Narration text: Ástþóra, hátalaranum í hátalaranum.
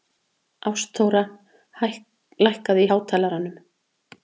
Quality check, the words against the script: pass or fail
fail